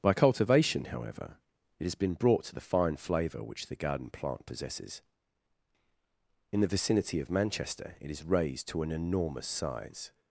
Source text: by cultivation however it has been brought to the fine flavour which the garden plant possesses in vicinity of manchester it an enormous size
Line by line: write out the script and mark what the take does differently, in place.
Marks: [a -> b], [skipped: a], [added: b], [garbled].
by cultivation however it has been brought to the fine flavour which the garden plant possesses in [added: the] vicinity of manchester it [added: is raised to] an enormous size